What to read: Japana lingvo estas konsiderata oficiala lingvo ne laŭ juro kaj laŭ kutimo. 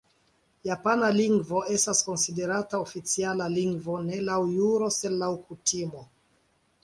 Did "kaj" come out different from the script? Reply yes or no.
yes